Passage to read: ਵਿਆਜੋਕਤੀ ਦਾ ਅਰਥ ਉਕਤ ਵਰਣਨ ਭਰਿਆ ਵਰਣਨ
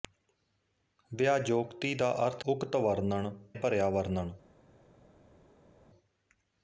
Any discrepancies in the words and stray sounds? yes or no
no